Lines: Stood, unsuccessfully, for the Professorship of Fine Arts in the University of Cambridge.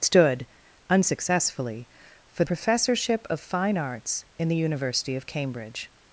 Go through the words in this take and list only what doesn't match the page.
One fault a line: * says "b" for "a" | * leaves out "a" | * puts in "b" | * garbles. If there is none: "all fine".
* leaves out "the"